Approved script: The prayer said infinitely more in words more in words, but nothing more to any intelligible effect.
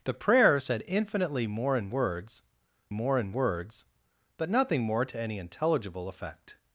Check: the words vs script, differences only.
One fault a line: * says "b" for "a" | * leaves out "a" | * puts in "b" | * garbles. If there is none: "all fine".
all fine